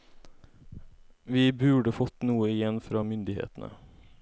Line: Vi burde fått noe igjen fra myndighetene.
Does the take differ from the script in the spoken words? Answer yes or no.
no